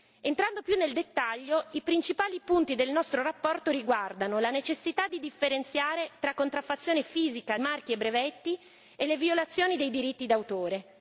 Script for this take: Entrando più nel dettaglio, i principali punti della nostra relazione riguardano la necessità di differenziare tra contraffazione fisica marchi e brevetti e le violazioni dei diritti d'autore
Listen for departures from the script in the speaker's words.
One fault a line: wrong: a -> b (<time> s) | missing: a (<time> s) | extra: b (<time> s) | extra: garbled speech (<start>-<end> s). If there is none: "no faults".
no faults